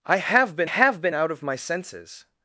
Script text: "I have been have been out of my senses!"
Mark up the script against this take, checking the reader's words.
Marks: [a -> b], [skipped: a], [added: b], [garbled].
"I have been have been out of my senses!"